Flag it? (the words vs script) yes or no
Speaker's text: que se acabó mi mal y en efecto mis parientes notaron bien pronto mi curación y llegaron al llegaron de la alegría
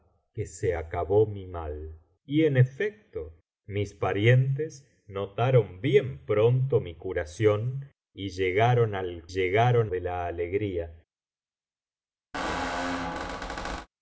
no